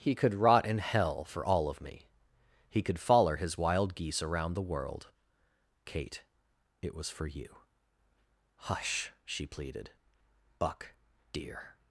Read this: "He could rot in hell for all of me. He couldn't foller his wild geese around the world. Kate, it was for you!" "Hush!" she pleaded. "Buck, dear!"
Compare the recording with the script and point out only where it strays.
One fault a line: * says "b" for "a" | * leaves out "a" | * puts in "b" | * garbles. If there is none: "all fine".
* says "could" for "couldn't"